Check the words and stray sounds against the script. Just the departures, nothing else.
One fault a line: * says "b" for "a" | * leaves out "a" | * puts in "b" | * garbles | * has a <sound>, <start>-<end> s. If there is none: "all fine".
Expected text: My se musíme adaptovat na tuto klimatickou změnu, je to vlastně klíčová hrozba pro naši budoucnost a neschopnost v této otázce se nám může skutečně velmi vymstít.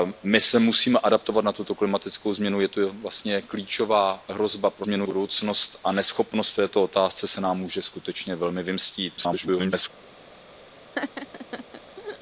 * says "změnu" for "naši"
* garbles
* has a laugh, 10.9-12.2 s